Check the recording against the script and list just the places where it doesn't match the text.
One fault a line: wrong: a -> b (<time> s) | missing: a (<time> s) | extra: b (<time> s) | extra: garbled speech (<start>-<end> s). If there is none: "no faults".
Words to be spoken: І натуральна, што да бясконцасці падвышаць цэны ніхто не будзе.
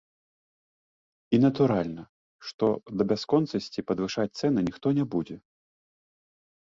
no faults